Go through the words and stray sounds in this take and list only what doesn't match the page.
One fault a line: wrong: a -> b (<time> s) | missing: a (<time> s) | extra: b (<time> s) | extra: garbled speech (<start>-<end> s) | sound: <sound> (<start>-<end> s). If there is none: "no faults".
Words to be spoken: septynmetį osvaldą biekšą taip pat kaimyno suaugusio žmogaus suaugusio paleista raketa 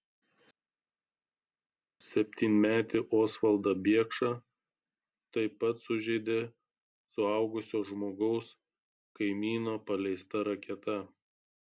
wrong: kaimyno -> sužeidė (5.9 s)
wrong: suaugusio -> kaimyno (9.2 s)